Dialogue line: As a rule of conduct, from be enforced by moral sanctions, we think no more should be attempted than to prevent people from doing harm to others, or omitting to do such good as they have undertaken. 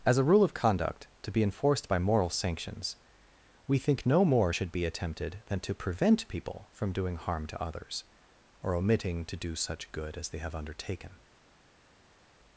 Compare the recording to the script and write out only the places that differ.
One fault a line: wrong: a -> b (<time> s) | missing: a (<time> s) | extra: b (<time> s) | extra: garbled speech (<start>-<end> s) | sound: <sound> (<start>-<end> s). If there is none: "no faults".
wrong: from -> to (1.2 s)